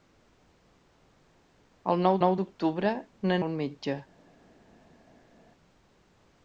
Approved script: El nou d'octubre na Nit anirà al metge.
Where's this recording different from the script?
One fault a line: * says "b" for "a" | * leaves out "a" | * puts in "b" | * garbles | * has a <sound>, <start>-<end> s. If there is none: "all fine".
* puts in "nou"
* leaves out "Nit anirà"